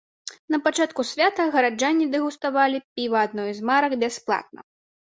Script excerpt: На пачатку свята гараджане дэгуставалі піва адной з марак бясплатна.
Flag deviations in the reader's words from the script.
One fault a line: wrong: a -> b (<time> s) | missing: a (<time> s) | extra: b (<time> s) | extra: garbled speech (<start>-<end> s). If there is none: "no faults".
no faults